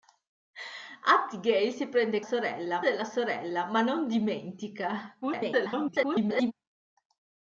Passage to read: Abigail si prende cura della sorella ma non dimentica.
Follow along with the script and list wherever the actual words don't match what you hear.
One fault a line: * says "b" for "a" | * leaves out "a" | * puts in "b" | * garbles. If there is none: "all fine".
* says "sorella" for "cura"
* garbles